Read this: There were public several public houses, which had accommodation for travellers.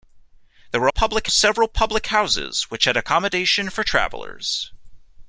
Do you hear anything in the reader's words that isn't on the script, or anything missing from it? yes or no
no